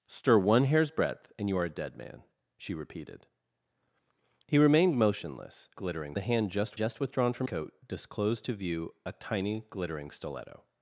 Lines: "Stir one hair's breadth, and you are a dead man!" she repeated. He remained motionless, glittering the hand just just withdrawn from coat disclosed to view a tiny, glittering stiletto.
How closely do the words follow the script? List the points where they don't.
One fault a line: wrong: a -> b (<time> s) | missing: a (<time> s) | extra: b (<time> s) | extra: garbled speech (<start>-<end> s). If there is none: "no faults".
no faults